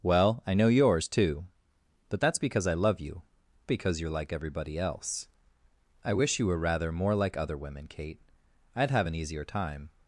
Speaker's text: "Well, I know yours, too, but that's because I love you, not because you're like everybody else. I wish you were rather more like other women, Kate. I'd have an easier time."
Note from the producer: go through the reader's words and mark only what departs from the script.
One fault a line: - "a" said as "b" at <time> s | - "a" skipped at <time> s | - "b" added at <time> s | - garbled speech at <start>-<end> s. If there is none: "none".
- "not" skipped at 3.2 s